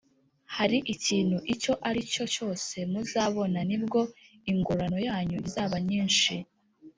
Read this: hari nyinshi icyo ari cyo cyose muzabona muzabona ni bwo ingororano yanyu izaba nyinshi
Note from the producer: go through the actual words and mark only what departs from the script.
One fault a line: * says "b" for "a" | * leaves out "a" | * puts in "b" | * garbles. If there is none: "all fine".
* says "ikintu" for "nyinshi"
* leaves out "muzabona"